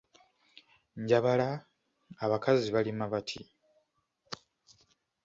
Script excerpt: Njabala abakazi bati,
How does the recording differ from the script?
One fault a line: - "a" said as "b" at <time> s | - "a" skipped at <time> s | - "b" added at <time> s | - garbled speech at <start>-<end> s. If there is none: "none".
- "balima" added at 2.7 s